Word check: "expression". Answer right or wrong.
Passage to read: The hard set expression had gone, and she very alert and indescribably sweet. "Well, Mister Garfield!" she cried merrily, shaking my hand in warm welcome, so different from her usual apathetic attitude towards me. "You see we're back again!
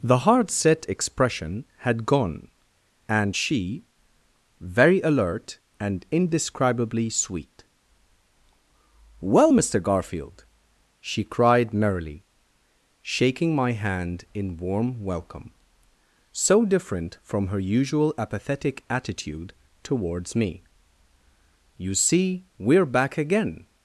right